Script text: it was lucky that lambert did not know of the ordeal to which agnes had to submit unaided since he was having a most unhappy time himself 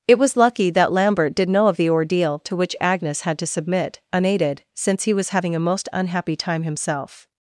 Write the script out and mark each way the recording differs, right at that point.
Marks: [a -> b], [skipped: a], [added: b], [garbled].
it was lucky that lambert did [skipped: not] know of the ordeal to which agnes had to submit unaided since he was having a most unhappy time himself